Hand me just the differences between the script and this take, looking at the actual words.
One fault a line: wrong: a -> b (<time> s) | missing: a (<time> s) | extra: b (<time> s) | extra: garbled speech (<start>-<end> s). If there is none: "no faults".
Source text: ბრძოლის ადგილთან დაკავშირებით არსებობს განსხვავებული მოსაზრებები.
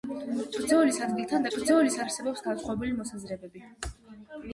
wrong: დაკავშირებით -> ბრძოლის (1.5 s)